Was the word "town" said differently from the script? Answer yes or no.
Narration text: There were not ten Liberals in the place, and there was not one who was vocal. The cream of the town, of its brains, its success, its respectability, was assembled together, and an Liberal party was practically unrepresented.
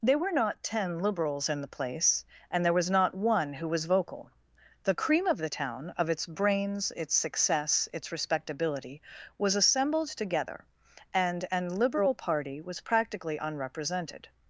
no